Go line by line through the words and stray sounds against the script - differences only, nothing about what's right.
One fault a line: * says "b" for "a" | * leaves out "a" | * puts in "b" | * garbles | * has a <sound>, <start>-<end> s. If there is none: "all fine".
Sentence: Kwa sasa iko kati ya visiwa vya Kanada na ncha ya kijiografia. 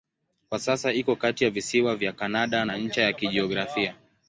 all fine